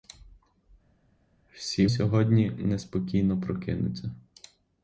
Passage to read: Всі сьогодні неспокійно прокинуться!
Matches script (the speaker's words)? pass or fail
pass